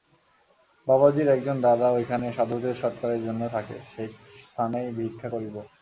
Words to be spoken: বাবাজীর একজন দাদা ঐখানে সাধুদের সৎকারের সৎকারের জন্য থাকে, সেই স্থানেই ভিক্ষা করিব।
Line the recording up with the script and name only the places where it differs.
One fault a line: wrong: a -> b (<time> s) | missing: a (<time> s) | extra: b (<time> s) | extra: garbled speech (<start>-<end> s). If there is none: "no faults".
missing: সৎকারের (3.2 s)